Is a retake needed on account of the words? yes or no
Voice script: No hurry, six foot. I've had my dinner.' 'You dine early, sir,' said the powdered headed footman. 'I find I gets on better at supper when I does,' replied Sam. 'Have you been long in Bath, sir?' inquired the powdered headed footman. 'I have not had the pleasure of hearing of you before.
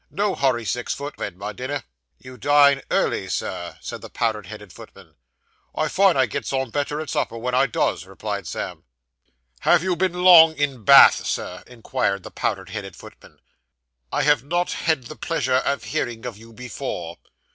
yes